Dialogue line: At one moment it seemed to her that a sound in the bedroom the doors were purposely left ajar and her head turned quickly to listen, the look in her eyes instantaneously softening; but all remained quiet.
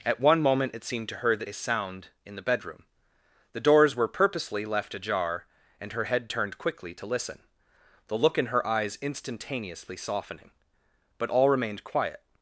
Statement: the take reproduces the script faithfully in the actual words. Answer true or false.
true